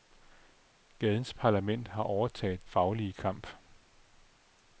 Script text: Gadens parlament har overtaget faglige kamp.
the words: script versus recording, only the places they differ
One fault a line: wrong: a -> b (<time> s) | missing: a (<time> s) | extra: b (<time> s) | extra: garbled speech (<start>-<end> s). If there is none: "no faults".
no faults